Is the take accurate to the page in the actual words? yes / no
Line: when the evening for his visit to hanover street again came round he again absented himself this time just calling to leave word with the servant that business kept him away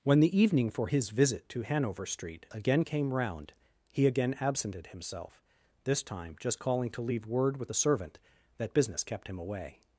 yes